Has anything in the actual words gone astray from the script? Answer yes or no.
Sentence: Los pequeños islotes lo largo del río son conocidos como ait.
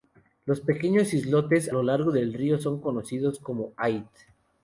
no